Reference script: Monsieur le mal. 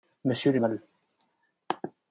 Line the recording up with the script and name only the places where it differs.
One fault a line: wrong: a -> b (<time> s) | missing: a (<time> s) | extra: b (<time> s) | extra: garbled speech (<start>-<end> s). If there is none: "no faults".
no faults